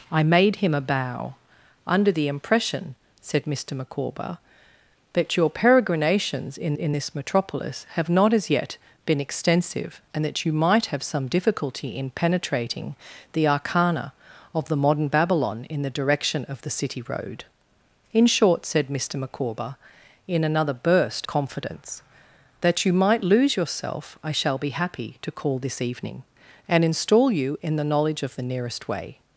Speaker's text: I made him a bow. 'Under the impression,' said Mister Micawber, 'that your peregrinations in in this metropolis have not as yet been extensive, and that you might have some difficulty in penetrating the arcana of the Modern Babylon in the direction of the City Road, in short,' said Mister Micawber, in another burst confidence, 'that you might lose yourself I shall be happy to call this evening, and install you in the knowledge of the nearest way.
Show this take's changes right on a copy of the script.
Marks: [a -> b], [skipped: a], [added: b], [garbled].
I made him a bow. 'Under the impression,' said Mister Micawber, 'that your peregrinations in in this metropolis have not as yet been extensive, and that you might have some difficulty in penetrating the arcana of the Modern Babylon in the direction of the City Road, in short,' said Mister Micawber, in another burst confidence, 'that you might lose yourself I shall be happy to call this evening, and install you in the knowledge of the nearest way.